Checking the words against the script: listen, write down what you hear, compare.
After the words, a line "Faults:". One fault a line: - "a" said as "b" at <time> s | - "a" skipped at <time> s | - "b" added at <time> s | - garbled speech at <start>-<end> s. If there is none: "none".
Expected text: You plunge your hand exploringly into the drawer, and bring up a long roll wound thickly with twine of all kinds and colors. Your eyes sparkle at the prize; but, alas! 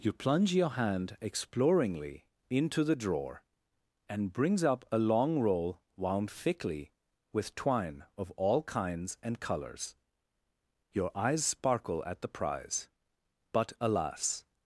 You plunge your hand exploringly into the drawer, and brings up a long roll wound thickly with twine of all kinds and colors. Your eyes sparkle at the prize; but, alas!
Faults:
- "bring" said as "brings" at 4.3 s